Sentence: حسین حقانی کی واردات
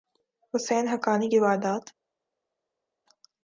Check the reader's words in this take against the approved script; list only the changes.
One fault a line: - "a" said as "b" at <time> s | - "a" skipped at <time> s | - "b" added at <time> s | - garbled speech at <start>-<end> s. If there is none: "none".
none